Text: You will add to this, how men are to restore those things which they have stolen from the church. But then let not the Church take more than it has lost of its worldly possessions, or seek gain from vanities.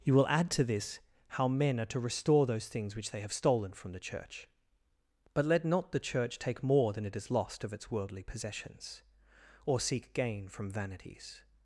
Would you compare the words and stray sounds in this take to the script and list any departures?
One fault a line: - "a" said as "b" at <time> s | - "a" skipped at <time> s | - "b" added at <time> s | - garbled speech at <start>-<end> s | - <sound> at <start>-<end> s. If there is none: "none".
- "then" skipped at 5.5 s